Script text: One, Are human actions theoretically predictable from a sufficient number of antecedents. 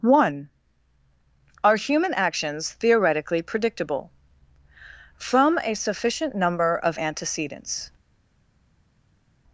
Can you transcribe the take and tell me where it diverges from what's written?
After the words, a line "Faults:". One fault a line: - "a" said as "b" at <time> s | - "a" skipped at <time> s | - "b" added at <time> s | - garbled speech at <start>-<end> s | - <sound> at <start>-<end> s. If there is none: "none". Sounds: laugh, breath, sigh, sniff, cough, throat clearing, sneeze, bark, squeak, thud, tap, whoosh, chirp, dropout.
One, Are human actions theoretically predictable from a sufficient number of antecedents.
Faults:
none